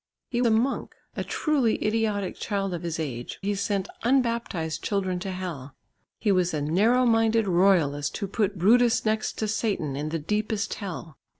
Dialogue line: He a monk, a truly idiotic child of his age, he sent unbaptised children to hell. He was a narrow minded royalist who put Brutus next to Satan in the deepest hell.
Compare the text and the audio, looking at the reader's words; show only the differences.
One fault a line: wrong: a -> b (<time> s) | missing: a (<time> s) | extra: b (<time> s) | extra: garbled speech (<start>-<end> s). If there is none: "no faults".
no faults